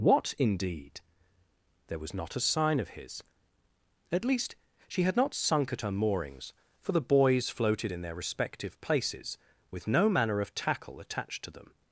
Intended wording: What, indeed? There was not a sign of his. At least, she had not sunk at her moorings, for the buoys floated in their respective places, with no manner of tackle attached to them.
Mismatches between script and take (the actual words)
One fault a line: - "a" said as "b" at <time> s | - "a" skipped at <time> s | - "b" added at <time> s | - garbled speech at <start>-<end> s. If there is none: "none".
none